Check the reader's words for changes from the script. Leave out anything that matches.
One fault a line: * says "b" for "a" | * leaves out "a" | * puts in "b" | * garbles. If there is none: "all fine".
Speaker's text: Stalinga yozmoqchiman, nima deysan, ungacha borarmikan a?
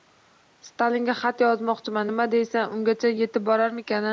* puts in "xat"
* puts in "yetib"